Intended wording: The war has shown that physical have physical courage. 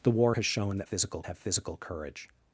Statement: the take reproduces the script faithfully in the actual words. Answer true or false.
true